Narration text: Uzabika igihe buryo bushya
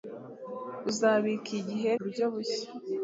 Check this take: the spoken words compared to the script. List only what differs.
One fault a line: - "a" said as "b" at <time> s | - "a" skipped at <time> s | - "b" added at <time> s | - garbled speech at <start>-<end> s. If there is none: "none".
none